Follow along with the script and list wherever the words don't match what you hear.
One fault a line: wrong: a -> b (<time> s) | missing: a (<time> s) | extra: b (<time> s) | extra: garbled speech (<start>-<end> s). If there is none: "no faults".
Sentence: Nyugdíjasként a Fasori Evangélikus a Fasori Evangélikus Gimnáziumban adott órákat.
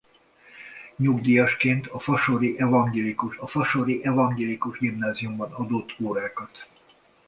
no faults